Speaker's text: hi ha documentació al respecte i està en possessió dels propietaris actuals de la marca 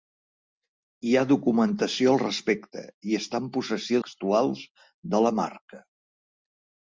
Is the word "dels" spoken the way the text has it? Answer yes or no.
no